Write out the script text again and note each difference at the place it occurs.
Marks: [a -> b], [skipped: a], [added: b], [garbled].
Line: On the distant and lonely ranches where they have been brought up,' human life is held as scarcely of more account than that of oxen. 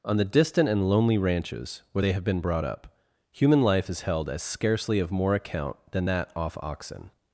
On the distant and lonely ranches where they have been brought up,' human life is held as scarcely of more account than that [of -> off] oxen.